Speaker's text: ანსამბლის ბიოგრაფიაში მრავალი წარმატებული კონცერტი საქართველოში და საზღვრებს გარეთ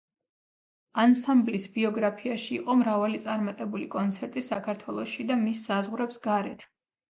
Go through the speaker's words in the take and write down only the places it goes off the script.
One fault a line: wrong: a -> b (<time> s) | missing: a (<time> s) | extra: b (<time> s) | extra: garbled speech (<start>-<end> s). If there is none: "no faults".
extra: იყო (2.6 s)
extra: მის (5.5 s)